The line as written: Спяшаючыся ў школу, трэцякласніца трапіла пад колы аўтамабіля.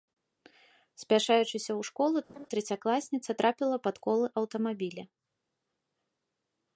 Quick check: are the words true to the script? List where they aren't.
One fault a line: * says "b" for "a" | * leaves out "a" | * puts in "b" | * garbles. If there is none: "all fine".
all fine